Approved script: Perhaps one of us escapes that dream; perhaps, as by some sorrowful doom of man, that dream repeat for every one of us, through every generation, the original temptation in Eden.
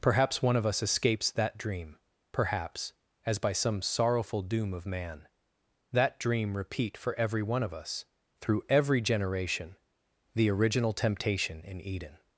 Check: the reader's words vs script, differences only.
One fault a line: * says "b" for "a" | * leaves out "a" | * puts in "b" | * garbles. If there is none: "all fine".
all fine